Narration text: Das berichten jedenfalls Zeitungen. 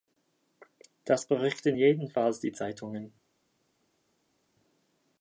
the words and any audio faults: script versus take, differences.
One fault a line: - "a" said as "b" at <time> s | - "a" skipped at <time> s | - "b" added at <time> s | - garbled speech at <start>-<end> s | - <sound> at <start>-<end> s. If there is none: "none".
- "die" added at 2.4 s